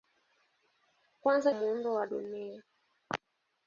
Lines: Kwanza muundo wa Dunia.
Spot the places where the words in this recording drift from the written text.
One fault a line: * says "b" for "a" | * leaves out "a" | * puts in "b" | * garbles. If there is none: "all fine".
all fine